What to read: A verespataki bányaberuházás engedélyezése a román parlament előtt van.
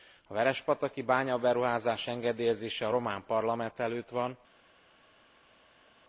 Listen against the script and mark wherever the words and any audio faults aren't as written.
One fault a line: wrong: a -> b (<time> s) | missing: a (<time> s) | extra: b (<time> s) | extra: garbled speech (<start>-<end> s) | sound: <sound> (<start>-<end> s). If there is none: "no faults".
no faults